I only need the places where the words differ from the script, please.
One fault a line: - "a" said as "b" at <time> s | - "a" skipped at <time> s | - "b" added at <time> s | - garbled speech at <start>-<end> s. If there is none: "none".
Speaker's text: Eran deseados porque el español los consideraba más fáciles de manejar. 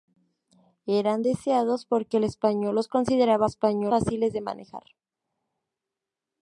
- "más" said as "español" at 3.4 s